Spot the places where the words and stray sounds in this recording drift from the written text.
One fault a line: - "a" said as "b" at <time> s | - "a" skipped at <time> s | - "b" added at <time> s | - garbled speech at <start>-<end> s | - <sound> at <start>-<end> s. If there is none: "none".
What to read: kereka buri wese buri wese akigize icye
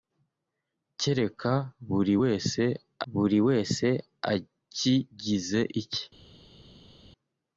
none